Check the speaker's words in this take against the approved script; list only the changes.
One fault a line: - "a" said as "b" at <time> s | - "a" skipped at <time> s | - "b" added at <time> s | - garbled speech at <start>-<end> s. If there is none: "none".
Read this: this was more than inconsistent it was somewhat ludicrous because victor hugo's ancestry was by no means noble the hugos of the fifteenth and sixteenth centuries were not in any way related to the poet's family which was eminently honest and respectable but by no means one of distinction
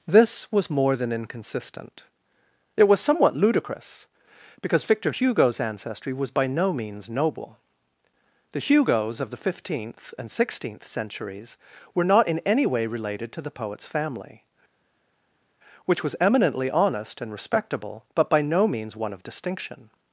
none